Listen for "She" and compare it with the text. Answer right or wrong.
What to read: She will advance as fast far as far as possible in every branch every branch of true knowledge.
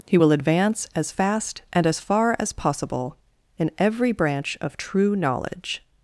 wrong